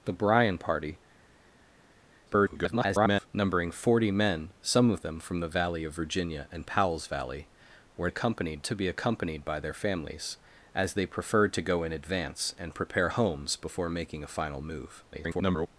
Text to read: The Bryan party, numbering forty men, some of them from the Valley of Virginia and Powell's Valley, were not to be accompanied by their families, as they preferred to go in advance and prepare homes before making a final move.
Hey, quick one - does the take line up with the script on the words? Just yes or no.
no